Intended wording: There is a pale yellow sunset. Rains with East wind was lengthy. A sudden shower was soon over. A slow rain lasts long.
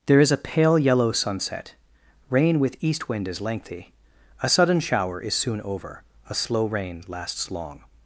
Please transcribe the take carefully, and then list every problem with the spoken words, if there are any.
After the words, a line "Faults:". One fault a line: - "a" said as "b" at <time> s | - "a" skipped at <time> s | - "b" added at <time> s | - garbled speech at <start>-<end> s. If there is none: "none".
There is a pale yellow sunset. Rain with East wind is lengthy. A sudden shower is soon over. A slow rain lasts long.
Faults:
- "Rains" said as "Rain" at 2.3 s
- "was" said as "is" at 3.3 s
- "was" said as "is" at 5.2 s